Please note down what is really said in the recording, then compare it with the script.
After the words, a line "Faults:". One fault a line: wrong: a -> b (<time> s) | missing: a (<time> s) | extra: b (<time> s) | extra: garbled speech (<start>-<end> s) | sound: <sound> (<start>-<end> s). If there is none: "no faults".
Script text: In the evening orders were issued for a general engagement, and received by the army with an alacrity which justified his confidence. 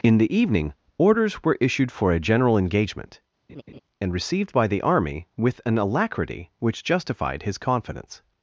In the evening orders were issued for a general engagement, and received by the army with an alacrity which justified his confidence.
Faults:
sound: laugh (3.5-3.8 s)